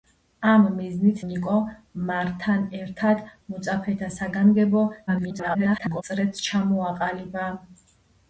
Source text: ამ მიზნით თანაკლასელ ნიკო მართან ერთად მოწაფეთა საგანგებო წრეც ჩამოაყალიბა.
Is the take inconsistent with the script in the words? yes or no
yes